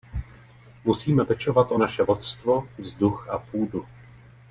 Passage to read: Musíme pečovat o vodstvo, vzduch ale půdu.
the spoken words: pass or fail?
fail